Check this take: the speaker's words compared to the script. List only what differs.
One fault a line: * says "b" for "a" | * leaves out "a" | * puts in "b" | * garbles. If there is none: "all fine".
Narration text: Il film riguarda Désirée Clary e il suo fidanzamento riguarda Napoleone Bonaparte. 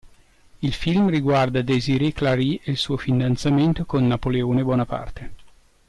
* says "con" for "riguarda"